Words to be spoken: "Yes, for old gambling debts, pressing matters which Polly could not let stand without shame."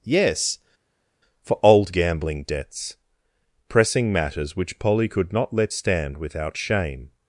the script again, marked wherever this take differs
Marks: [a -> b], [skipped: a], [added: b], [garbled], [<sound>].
"Yes, for old gambling debts, pressing matters which Polly could not let stand without shame."